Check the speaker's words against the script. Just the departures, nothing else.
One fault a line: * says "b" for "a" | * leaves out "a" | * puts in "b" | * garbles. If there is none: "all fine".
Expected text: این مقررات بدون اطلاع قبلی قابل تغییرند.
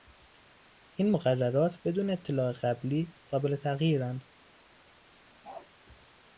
all fine